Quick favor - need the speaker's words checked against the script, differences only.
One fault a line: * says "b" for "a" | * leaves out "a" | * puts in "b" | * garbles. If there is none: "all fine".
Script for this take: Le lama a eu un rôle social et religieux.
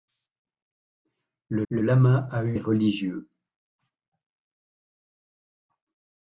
* puts in "le"
* leaves out "un rôle social"